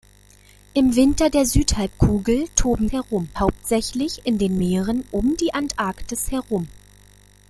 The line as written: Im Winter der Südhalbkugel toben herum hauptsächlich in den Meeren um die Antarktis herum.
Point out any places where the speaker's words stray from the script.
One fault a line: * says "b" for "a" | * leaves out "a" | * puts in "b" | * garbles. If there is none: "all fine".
all fine